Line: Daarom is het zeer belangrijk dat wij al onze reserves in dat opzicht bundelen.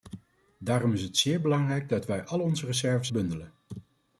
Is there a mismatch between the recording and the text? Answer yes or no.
yes